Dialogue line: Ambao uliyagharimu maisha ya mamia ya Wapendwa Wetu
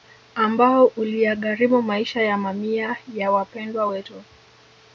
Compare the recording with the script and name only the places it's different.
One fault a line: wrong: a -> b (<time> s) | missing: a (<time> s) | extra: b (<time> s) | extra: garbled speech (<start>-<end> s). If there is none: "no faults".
no faults